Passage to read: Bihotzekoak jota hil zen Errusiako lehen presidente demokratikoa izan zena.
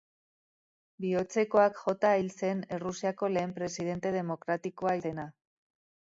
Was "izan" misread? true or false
true